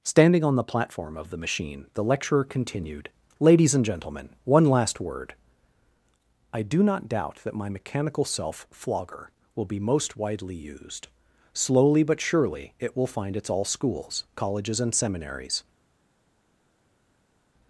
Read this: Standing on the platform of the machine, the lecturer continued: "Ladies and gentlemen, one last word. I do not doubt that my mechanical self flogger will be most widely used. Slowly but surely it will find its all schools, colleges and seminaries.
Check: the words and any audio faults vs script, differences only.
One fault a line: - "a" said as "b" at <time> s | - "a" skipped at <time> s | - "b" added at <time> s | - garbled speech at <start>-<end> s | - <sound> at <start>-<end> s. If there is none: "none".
none